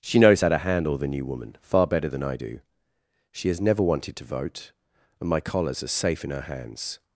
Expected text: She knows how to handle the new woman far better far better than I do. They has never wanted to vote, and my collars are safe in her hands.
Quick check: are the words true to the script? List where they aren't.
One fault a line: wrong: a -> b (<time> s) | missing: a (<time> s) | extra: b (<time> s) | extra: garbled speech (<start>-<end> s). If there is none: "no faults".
missing: far better (2.1 s)
wrong: They -> She (3.3 s)